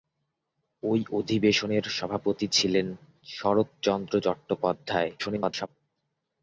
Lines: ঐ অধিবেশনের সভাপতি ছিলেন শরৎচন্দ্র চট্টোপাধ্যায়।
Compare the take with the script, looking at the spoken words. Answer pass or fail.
fail